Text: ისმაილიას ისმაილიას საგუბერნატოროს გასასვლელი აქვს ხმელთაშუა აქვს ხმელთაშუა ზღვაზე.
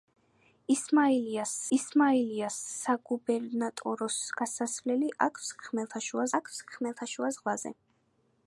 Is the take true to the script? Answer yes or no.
yes